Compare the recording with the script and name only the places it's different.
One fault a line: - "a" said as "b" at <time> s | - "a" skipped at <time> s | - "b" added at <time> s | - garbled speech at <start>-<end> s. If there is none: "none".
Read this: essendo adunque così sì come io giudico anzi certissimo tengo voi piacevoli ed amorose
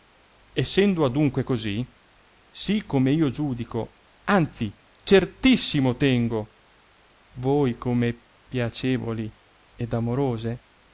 - "come" added at 7.8 s